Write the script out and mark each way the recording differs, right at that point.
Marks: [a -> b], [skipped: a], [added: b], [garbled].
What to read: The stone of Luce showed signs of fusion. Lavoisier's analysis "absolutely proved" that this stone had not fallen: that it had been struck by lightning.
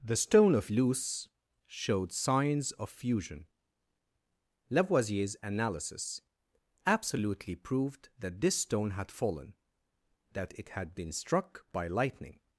The stone of Luce showed signs of fusion. Lavoisier's analysis "absolutely proved" that this stone had [skipped: not] fallen: that it had been struck by lightning.